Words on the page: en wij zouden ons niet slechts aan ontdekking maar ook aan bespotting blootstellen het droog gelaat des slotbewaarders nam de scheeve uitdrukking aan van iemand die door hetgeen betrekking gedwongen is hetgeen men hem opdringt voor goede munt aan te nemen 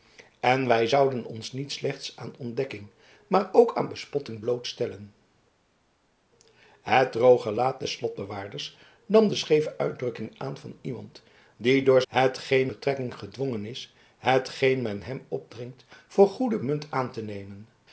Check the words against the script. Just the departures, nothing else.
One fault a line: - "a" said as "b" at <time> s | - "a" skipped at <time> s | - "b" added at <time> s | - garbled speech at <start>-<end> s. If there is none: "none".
none